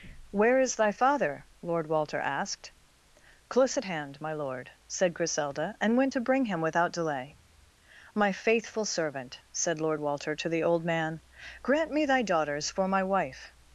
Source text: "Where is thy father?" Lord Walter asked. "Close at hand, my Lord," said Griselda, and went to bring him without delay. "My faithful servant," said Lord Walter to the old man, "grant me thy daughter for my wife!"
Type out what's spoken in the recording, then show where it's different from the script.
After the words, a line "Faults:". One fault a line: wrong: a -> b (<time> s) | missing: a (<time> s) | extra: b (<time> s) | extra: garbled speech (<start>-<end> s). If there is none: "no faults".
"Where is thy father?" Lord Walter asked. "Close at hand, my Lord," said Griselda, and went to bring him without delay. "My faithful servant," said Lord Walter to the old man, "grant me thy daughters for my wife!"
Faults:
wrong: daughter -> daughters (12.2 s)